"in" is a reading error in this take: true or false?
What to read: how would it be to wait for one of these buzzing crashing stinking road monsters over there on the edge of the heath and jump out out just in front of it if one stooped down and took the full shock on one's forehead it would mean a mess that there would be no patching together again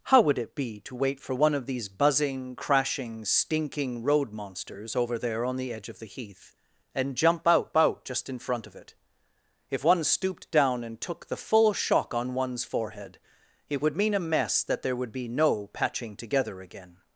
false